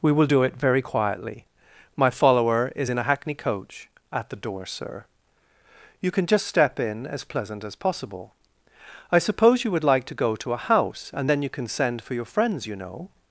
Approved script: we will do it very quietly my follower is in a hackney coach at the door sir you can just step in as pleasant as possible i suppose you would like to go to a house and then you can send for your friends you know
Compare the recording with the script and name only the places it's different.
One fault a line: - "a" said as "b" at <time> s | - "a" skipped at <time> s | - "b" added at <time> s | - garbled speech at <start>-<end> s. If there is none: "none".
none